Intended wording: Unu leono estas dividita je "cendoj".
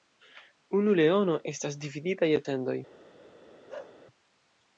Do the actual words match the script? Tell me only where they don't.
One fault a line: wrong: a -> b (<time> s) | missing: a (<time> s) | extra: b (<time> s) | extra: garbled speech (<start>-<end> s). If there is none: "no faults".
no faults